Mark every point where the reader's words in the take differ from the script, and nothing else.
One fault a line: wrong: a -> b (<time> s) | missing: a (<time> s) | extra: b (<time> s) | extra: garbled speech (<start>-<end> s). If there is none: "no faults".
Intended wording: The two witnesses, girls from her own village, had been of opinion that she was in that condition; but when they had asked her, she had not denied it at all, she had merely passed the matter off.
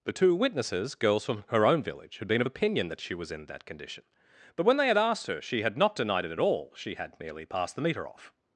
wrong: matter -> meter (7.8 s)